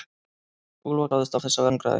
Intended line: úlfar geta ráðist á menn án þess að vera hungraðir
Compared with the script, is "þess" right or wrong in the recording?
right